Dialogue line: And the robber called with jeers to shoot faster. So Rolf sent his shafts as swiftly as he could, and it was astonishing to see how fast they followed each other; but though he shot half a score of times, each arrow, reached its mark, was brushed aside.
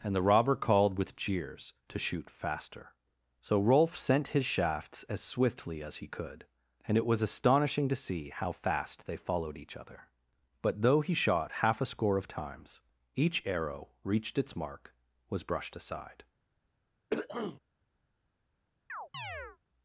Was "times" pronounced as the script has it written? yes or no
yes